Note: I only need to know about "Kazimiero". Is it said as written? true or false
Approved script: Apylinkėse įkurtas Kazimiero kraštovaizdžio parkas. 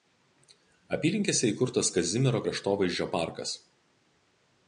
true